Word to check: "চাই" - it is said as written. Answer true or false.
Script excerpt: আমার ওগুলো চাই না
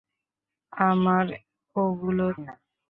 false